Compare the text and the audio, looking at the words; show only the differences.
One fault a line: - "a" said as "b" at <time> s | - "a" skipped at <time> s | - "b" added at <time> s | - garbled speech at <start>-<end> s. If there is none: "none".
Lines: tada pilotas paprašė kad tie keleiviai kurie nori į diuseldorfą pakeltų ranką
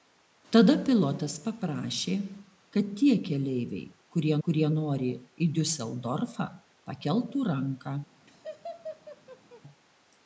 - "kurie" added at 4.5 s